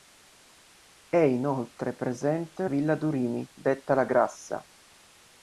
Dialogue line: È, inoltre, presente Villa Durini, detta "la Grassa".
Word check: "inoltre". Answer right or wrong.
right